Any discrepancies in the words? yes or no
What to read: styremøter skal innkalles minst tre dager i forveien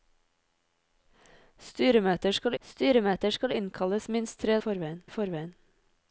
yes